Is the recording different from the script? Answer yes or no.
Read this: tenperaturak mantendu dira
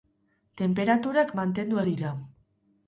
no